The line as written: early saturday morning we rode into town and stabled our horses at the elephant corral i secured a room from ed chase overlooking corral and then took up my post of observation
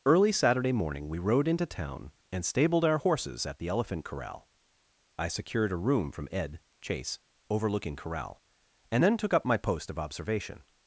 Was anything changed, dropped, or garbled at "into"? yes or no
no